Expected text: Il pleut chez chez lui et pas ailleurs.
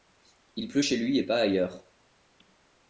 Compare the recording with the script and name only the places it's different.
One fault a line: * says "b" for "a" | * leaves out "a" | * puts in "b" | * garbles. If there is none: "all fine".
* leaves out "chez"